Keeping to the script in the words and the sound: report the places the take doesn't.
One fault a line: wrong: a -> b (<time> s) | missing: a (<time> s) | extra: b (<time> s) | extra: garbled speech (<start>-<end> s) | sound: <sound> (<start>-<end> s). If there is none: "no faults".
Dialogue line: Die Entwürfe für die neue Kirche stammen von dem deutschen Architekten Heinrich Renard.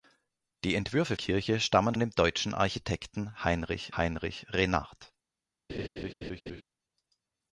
missing: für die neue (1.1 s)
missing: von (2.0 s)
extra: Heinrich (3.9 s)
sound: laugh (5.7-6.6 s)